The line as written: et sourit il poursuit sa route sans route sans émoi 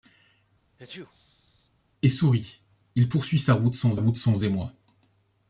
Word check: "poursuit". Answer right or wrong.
right